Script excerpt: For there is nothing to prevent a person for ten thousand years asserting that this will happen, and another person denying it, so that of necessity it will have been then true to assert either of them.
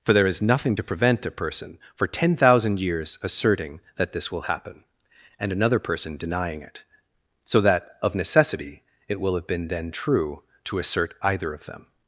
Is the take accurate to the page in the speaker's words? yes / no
yes